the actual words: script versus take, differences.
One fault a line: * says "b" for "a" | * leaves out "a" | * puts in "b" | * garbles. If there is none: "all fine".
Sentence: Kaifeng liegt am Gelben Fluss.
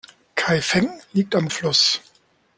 * leaves out "Gelben"